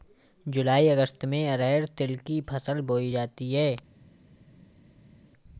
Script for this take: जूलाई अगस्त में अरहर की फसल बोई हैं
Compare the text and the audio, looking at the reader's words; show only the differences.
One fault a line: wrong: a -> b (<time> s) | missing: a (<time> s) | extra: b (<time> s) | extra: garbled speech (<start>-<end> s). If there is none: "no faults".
extra: तिल (2.0 s)
extra: जाती (3.1 s)